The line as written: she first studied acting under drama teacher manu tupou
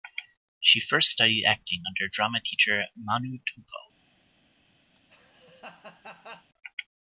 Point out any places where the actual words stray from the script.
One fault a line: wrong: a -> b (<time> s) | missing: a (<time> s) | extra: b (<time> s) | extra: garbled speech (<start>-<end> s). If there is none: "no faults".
no faults